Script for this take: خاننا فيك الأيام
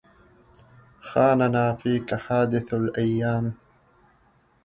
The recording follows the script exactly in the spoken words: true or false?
false